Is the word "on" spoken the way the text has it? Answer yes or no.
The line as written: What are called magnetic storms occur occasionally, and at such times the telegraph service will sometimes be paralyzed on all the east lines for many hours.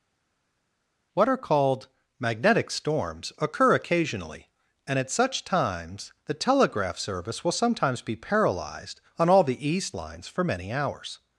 yes